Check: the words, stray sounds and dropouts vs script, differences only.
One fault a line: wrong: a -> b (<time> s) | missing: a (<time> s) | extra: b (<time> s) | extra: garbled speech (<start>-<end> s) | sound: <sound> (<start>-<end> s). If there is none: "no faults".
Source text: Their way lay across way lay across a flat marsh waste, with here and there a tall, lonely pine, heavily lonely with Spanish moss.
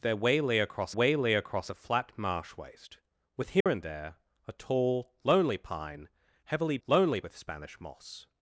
sound: dropout (3.6-3.7 s)